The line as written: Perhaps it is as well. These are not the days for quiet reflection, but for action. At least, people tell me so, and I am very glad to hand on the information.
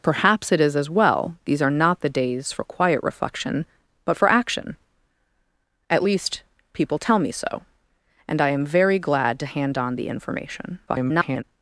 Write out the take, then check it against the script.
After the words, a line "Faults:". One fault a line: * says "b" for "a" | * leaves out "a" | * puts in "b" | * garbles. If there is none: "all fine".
Perhaps it is as well. These are not the days for quiet reflection, but for action. At least, people tell me so, and I am very glad to hand on the information. [garbled]
Faults:
* garbles